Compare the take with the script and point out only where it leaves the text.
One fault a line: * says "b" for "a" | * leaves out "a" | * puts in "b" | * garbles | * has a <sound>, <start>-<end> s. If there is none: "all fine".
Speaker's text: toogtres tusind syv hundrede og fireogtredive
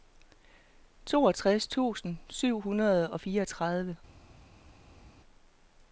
all fine